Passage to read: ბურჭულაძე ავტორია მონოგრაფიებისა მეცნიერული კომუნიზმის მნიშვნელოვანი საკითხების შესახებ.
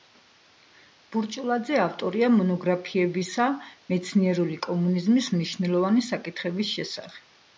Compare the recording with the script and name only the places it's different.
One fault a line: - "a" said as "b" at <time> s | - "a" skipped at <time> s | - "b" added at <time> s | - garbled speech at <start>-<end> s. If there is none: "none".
none